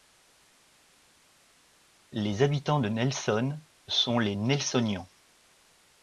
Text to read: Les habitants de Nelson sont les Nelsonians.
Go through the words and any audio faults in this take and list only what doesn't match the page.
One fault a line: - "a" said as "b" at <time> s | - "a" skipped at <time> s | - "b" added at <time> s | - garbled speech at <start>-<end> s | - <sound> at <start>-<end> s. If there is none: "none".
none